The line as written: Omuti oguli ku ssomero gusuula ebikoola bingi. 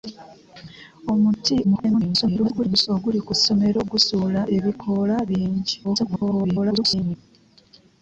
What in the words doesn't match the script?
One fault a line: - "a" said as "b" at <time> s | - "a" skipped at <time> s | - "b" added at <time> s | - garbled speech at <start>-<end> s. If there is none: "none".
- garbled speech at 1.6-2.9 s
- garbled speech at 5.8-7.2 s